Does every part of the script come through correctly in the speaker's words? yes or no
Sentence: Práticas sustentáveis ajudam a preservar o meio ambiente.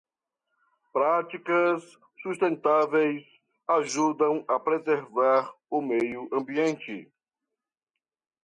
yes